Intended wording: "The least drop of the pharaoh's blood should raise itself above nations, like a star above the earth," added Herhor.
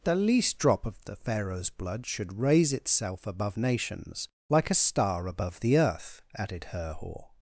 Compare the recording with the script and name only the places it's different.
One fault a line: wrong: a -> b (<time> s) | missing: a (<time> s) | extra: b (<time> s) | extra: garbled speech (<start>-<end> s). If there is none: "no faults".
no faults